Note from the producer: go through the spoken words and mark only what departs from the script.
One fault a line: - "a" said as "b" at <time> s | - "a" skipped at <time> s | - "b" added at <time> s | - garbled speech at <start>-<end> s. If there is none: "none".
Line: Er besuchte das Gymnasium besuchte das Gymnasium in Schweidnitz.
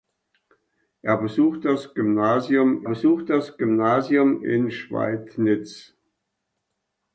none